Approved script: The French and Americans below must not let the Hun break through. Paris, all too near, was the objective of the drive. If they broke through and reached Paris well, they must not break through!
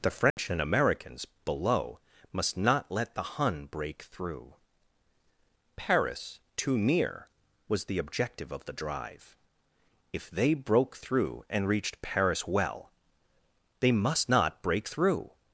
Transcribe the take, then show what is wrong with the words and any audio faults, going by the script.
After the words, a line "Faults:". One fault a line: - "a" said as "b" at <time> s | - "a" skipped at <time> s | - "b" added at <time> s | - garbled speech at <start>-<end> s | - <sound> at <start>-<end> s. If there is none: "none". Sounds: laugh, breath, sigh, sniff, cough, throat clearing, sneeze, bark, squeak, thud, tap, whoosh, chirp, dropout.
The French and Americans below must not let the Hun break through. Paris, too near, was the objective of the drive. If they broke through and reached Paris well, they must not break through!
Faults:
- dropout at 0.3-0.4 s
- "all" skipped at 6.4 s